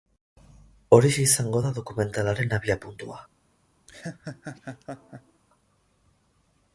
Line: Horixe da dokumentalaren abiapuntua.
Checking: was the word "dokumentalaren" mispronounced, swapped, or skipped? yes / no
no